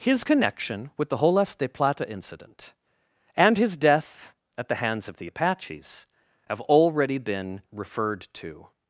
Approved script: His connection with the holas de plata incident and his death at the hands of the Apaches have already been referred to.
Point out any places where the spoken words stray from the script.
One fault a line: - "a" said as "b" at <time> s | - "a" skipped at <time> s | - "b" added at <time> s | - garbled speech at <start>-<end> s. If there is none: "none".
none